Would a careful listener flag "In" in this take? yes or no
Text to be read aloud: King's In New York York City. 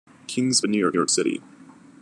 no